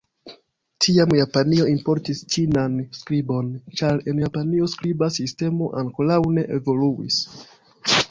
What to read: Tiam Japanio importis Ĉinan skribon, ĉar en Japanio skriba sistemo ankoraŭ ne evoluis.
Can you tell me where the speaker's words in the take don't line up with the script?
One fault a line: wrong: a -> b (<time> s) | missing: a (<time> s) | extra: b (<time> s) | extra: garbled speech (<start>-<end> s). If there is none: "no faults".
no faults